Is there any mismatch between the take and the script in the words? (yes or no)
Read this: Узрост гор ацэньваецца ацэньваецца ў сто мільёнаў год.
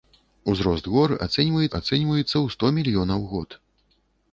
no